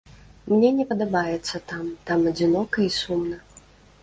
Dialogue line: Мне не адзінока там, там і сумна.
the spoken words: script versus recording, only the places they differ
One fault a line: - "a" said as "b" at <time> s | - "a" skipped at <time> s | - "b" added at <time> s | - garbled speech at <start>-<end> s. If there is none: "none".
- "адзінока" said as "падабаецца" at 0.9 s
- "адзінока" added at 2.3 s